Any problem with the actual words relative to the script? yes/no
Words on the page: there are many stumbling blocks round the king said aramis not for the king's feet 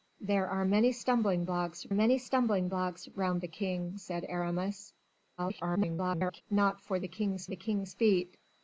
yes